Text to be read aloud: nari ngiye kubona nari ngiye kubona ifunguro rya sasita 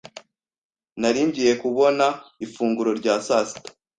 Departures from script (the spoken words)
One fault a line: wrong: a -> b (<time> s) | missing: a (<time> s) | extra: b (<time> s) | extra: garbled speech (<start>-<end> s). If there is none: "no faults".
missing: nari ngiye kubona (2.1 s)